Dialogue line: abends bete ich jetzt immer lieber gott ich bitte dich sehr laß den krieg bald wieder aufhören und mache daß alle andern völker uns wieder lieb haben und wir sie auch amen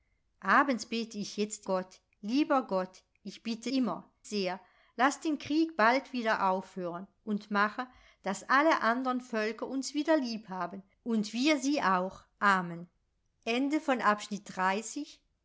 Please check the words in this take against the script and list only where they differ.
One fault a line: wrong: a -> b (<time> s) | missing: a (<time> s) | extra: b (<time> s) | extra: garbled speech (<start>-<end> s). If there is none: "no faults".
wrong: immer -> gott (1.6 s)
wrong: dich -> immer (3.7 s)